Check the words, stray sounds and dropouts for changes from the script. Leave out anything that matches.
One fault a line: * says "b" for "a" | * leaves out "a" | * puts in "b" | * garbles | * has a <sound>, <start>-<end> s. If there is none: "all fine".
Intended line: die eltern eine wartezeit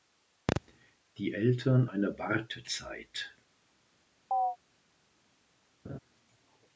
* has a chirp, 4.3-4.6 s
* has a laugh, 5.8-6.0 s